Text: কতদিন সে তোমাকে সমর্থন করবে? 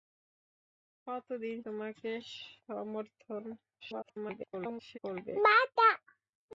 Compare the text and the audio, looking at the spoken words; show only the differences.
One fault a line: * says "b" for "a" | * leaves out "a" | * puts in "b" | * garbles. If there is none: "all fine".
* leaves out "সে"
* garbles